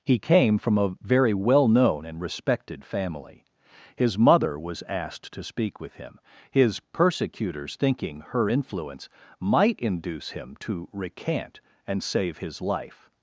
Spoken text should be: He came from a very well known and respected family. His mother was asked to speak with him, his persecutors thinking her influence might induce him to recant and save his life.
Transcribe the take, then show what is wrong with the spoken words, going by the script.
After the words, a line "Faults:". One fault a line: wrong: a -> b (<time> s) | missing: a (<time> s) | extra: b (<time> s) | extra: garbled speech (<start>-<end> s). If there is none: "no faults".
He came from a very well known and respected family. His mother was asked to speak with him, his persecutors thinking her influence might induce him to recant and save his life.
Faults:
no faults